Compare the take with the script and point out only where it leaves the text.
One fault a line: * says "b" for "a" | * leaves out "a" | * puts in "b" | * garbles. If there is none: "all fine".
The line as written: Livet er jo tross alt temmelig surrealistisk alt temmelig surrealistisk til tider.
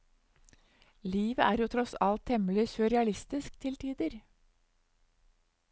* leaves out "alt temmelig surrealistisk"